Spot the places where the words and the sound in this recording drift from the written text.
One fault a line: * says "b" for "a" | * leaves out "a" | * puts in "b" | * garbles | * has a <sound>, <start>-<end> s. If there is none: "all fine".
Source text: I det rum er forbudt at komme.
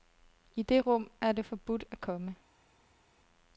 * puts in "det"